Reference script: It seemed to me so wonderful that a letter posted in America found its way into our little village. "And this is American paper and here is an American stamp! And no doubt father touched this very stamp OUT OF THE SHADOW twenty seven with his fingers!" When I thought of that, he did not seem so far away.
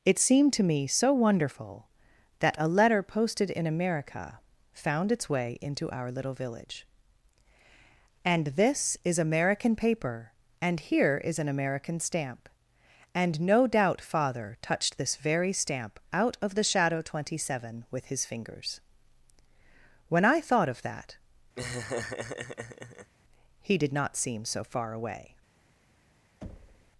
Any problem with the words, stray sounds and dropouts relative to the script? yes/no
yes